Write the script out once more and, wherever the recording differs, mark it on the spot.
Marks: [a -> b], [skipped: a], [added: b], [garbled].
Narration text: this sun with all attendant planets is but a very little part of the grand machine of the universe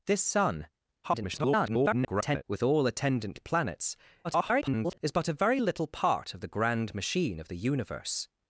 this sun [garbled] with all attendant planets [garbled] is but a very little part of the grand machine of the universe